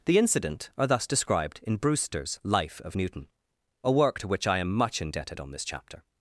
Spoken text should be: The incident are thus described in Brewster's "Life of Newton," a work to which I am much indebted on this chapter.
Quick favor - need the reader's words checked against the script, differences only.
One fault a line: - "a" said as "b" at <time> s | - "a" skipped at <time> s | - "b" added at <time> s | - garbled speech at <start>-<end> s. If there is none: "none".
none